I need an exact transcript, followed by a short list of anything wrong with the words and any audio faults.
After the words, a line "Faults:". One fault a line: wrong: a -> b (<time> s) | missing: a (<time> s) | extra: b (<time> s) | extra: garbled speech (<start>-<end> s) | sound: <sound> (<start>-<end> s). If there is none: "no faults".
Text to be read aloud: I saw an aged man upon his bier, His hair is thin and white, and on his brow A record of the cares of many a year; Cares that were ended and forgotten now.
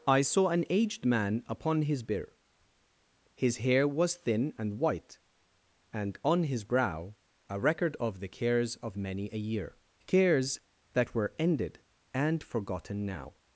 I saw an aged man upon his bier, His hair was thin and white, and on his brow A record of the cares of many a year; Cares that were ended and forgotten now.
Faults:
wrong: is -> was (3.9 s)